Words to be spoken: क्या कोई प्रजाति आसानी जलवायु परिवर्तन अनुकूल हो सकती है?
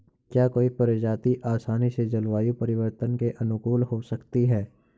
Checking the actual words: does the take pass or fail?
fail